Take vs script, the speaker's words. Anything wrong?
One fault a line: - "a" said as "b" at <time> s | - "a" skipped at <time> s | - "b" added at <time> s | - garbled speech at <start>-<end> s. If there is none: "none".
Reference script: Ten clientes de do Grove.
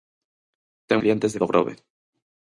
none